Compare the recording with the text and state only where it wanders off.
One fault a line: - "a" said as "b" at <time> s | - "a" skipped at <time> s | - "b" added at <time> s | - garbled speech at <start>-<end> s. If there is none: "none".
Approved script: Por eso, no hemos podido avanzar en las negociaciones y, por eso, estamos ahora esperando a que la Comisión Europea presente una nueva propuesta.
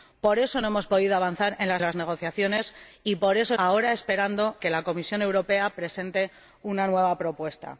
- "las" added at 1.8 s
- "estamos" skipped at 3.5 s
- "a" skipped at 4.6 s